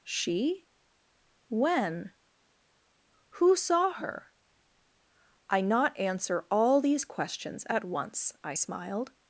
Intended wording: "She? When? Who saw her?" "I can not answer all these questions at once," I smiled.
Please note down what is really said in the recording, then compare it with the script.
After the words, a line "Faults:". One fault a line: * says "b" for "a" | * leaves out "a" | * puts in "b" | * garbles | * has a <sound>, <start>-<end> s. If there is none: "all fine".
"She? When? Who saw her?" "I not answer all these questions at once," I smiled.
Faults:
* leaves out "can"